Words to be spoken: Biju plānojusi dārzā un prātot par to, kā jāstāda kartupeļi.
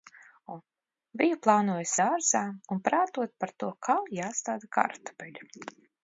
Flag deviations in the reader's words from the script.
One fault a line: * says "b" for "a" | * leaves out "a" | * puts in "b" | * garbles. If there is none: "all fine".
all fine